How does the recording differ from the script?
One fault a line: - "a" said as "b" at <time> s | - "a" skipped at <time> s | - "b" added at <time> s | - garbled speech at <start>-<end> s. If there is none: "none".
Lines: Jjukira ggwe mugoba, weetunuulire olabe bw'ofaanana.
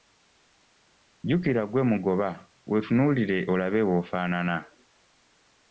none